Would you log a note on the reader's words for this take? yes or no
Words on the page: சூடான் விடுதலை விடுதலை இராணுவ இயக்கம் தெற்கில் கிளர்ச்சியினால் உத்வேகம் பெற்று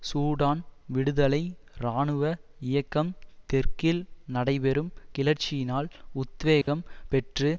yes